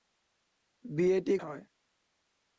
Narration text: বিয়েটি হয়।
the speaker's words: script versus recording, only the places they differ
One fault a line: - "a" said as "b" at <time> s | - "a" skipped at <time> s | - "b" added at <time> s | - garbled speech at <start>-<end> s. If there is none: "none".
none